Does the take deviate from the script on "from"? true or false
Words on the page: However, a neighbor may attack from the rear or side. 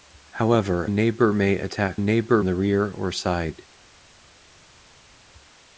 true